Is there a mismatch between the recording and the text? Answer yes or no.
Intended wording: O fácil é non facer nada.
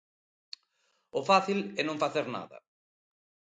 no